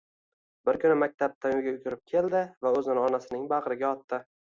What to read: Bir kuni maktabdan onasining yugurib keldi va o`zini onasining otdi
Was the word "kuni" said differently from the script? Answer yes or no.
no